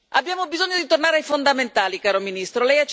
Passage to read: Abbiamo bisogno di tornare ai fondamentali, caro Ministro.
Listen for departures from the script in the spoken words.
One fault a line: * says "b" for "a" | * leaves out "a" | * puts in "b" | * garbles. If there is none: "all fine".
all fine